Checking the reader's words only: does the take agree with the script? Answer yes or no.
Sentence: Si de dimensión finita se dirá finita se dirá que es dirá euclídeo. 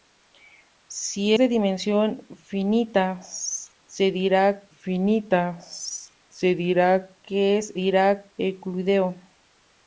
yes